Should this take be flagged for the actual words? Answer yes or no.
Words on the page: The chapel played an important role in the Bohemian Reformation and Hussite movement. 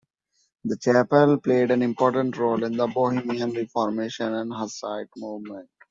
no